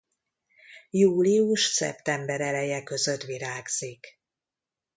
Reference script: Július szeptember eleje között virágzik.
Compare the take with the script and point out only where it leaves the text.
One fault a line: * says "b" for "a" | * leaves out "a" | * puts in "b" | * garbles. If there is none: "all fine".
all fine